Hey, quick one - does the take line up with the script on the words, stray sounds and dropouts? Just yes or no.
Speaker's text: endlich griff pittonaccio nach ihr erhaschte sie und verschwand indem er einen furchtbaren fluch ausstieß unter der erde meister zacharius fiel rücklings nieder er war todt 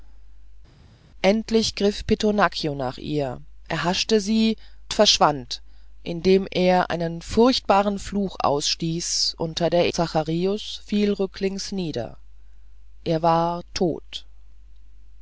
no